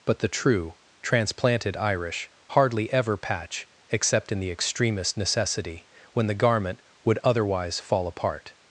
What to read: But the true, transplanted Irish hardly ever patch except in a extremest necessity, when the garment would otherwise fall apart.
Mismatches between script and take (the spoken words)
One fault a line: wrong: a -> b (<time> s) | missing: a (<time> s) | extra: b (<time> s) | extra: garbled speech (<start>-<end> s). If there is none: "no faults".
wrong: a -> the (4.4 s)